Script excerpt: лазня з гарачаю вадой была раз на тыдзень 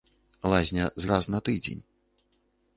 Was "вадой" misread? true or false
true